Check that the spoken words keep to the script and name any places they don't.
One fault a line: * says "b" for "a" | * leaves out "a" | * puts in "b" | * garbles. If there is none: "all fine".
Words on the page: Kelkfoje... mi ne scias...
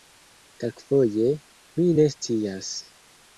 all fine